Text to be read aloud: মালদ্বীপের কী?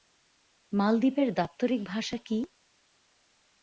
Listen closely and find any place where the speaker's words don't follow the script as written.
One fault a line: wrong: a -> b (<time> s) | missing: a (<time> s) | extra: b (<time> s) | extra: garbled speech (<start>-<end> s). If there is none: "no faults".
extra: দাপ্তরিক ভাষা (1.3 s)